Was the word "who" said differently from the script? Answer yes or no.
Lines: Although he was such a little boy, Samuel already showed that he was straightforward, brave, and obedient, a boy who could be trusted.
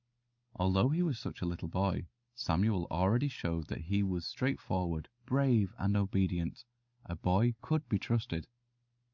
yes